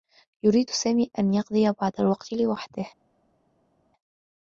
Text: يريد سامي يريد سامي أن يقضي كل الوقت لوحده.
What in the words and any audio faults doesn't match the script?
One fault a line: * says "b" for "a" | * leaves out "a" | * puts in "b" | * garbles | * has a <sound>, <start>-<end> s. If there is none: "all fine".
* leaves out "يريد سامي"
* says "بعض" for "كل"